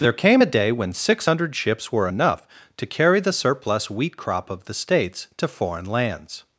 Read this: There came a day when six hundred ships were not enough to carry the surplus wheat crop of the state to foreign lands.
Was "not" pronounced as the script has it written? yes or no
no